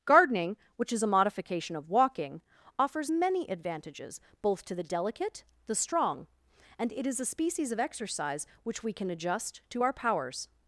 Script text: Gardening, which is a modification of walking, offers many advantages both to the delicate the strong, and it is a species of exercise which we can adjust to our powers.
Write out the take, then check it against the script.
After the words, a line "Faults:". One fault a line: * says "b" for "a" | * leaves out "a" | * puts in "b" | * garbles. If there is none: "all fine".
Gardening, which is a modification of walking, offers many advantages both to the delicate the strong, and it is a species of exercise which we can adjust to our powers.
Faults:
all fine